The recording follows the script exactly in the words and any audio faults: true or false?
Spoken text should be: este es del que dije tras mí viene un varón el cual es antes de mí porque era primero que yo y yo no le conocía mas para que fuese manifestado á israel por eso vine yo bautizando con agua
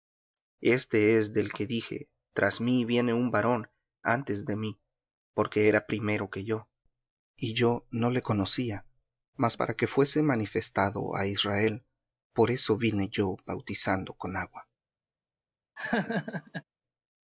false